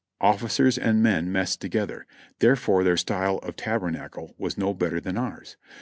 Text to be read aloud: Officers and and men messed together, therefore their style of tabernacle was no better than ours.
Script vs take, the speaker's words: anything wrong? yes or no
yes